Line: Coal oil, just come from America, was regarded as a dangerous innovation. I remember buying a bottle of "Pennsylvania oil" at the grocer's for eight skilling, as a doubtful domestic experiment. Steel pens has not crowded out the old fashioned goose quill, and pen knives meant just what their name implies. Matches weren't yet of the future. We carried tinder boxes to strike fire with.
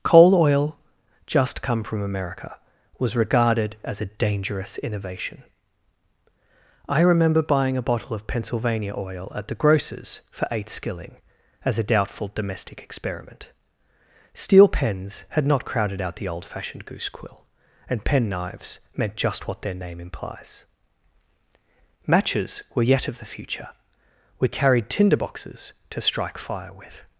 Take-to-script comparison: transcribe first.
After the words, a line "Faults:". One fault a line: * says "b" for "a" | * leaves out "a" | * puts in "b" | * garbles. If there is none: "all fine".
Coal oil, just come from America, was regarded as a dangerous innovation. I remember buying a bottle of "Pennsylvania oil" at the grocer's for eight skilling, as a doubtful domestic experiment. Steel pens had not crowded out the old fashioned goose quill, and pen knives meant just what their name implies. Matches were yet of the future. We carried tinder boxes to strike fire with.
Faults:
* says "had" for "has"
* says "were" for "weren't"